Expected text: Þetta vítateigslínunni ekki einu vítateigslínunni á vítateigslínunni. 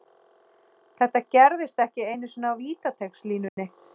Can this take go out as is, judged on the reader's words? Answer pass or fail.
fail